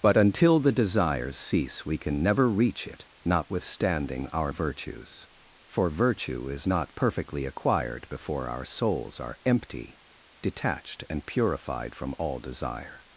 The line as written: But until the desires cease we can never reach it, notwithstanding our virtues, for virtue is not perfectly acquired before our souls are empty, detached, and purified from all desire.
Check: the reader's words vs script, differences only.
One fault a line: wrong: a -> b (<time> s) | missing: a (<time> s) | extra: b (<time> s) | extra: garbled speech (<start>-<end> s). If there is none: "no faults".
no faults